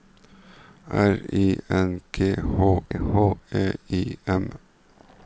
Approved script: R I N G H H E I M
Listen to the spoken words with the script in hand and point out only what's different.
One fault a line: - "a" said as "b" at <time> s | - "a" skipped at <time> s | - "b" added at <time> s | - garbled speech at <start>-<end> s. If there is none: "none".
none